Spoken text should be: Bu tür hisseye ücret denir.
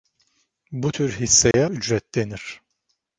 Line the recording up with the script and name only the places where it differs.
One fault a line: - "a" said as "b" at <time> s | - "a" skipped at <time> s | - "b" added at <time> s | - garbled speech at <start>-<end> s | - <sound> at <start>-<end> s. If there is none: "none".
- dropout at 1.5-1.5 s